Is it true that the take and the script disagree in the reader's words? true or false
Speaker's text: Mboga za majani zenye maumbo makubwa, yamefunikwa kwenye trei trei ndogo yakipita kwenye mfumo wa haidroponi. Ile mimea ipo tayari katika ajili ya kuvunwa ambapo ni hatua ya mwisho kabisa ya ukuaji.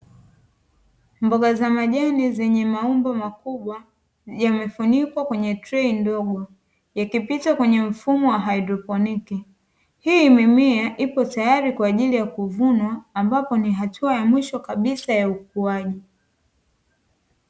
true